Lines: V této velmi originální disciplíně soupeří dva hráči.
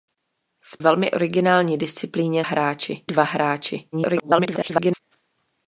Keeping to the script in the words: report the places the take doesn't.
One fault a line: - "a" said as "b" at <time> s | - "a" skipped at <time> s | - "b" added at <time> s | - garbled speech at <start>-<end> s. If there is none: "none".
- "této" skipped at 0.8 s
- "soupeří" said as "hráči" at 2.4 s
- garbled speech at 3.9-5.0 s